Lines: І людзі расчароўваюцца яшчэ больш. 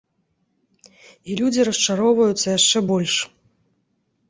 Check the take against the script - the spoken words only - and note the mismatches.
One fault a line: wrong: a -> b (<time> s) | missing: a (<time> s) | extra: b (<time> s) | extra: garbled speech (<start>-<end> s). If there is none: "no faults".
no faults